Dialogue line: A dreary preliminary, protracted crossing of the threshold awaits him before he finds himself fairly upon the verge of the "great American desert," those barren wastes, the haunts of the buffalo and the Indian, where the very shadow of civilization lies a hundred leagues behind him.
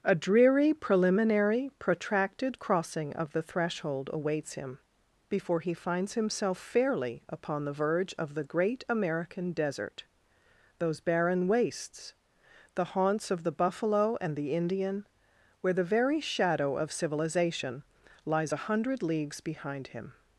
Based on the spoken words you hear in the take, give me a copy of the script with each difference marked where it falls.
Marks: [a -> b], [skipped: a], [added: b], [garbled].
A dreary preliminary, protracted crossing of the threshold awaits him before he finds himself fairly upon the verge of the "great American desert," those barren wastes, the haunts of the buffalo and the Indian, where the very shadow of civilization lies a hundred leagues behind him.